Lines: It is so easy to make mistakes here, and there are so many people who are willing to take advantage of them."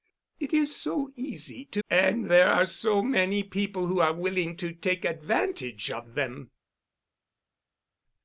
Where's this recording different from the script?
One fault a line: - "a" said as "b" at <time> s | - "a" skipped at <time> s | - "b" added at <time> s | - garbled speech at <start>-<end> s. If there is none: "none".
- "make mistakes here" skipped at 1.8 s